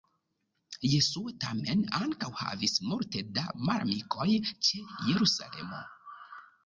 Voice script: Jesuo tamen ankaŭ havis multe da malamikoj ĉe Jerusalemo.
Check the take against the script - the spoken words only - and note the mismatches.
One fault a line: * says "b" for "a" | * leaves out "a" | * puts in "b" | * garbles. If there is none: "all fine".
all fine